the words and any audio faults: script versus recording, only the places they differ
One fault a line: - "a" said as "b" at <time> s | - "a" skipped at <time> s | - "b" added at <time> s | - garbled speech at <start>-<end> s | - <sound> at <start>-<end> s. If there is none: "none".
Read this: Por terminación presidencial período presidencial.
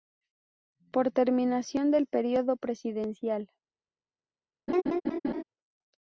- "presidencial" said as "del" at 1.9 s
- laugh at 4.7-5.4 s